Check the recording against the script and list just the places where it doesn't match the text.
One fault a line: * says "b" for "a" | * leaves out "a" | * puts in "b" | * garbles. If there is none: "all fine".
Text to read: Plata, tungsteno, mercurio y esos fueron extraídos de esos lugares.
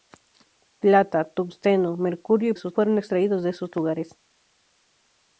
all fine